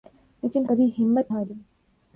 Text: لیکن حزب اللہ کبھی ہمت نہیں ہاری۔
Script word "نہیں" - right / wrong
wrong